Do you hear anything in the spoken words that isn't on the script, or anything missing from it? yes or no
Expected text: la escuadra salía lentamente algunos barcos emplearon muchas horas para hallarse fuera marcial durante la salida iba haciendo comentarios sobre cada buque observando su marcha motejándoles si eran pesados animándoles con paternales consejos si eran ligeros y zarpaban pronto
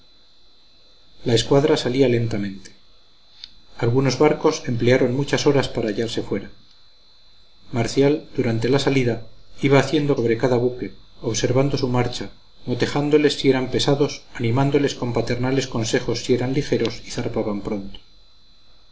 yes